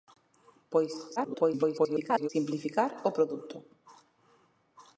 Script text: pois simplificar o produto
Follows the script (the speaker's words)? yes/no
no